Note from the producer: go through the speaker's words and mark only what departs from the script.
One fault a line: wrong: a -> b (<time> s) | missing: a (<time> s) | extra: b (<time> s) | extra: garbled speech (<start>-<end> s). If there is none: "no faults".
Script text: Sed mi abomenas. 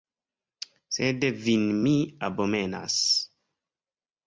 extra: vin (1.4 s)